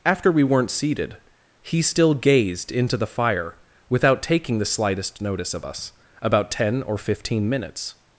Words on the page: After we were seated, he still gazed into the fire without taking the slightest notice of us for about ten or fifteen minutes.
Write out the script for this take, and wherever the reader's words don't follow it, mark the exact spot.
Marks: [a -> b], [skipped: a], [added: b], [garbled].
After we [were -> weren't] seated, he still gazed into the fire without taking the slightest notice of us [skipped: for] about ten or fifteen minutes.